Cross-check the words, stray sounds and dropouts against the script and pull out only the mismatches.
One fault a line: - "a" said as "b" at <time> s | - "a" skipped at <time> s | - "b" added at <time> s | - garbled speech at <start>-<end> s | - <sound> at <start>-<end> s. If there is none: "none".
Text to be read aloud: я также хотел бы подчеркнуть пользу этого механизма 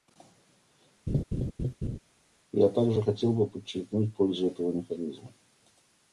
- laugh at 1.1-2.0 s